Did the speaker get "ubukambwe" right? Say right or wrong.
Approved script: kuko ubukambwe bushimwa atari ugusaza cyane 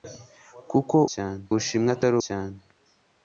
wrong